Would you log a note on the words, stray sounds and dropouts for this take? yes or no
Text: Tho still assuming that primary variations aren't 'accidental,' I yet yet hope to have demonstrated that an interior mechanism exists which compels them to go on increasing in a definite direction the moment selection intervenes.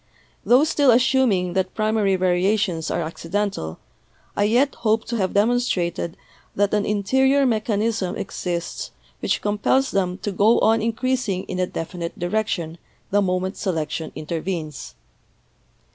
yes